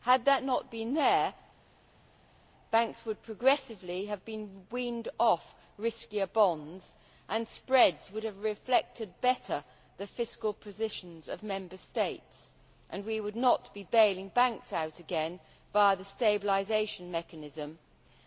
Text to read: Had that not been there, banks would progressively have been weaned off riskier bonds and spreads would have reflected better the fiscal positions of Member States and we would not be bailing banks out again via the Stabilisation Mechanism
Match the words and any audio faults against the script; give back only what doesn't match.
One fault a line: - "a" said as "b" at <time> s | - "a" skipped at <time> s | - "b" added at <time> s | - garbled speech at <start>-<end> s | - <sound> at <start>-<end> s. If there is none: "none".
none